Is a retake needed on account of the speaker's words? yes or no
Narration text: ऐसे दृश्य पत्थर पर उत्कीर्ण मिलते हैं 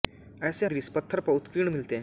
no